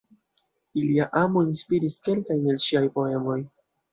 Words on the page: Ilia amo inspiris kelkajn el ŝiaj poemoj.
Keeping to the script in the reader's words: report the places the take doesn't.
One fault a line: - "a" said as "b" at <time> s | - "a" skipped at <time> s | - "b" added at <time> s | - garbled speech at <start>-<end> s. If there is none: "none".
none